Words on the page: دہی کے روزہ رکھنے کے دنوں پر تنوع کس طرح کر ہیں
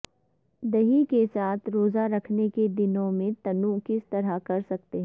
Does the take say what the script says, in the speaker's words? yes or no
no